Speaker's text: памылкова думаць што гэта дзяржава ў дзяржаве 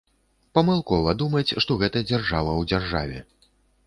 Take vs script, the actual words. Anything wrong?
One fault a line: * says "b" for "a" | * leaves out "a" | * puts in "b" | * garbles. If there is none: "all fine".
all fine